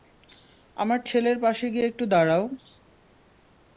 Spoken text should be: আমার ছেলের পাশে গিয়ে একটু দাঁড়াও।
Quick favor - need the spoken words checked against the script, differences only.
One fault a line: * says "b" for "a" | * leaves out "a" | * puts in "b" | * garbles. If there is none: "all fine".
all fine